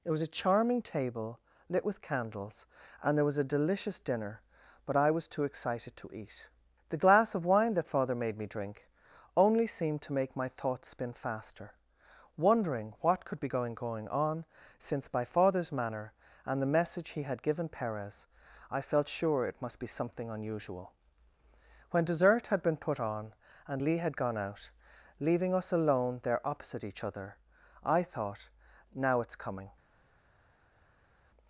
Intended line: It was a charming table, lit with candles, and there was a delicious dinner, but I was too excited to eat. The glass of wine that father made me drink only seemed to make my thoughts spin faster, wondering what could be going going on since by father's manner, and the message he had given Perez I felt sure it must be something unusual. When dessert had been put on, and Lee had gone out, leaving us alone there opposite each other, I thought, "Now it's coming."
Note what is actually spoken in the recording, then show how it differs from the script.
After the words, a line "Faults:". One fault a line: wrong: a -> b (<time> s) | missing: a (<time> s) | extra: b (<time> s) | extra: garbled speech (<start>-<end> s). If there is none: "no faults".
It was a charming table, lit with candles, and there was a delicious dinner, but I was too excited to eat. The glass of wine that father made me drink only seemed to make my thoughts spin faster, wondering what could be going going on since by father's manner, and the message he had given Perez I felt sure it must be something unusual. When dessert had been put on, and Lee had gone out, leaving us alone there opposite each other, I thought, "Now it's coming."
Faults:
no faults